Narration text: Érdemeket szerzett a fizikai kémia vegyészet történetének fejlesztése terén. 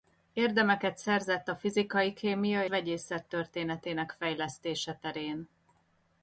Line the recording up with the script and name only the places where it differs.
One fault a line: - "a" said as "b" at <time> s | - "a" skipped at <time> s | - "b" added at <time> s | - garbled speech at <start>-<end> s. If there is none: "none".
none